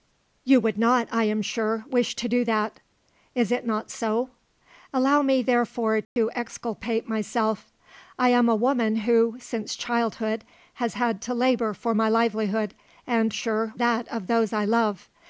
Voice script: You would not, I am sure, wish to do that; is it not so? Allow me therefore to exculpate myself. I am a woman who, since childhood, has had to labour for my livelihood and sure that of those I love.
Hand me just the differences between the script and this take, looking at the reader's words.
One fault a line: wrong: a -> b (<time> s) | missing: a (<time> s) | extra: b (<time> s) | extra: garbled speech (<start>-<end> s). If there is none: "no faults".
no faults